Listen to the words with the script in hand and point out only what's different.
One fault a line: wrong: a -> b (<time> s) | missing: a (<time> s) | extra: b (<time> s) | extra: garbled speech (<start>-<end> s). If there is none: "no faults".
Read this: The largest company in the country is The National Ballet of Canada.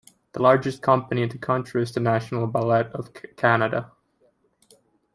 no faults